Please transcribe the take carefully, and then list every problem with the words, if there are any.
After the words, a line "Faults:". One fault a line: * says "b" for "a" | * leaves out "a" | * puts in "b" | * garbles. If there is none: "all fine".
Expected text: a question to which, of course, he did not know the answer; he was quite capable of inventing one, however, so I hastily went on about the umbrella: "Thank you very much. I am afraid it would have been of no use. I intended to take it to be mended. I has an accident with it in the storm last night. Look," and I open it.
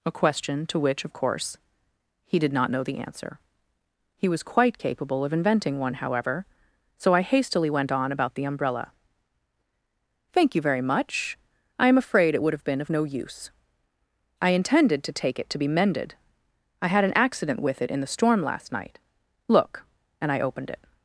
a question to which, of course, he did not know the answer; he was quite capable of inventing one, however, so I hastily went on about the umbrella: "Thank you very much. I am afraid it would have been of no use. I intended to take it to be mended. I had an accident with it in the storm last night. Look," and I opened it.
Faults:
* says "had" for "has"
* says "opened" for "open"